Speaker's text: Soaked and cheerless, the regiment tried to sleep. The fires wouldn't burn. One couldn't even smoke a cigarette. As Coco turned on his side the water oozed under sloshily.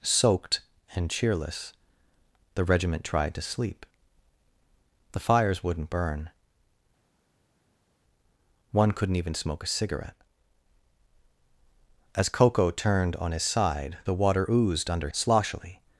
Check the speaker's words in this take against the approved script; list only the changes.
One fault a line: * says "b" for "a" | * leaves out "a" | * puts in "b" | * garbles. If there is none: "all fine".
all fine